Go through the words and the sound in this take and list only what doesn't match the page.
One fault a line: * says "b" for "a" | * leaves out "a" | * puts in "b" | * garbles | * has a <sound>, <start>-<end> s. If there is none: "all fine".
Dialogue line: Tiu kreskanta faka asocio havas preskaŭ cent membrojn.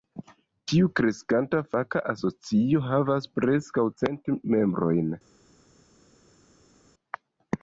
all fine